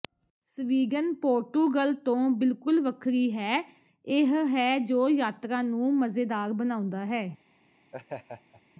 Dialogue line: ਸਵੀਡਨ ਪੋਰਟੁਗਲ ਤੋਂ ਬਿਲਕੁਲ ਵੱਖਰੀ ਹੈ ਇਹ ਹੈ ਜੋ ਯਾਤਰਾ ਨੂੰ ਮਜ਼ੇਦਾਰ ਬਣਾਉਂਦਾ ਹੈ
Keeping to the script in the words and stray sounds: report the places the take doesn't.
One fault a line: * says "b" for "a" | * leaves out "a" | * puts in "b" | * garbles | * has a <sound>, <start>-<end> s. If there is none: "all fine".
* has a laugh, 7.9-8.6 s